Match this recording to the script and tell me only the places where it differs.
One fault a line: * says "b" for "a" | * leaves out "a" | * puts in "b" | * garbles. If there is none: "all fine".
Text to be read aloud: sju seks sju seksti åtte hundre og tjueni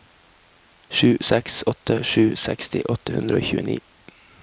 * puts in "åtte"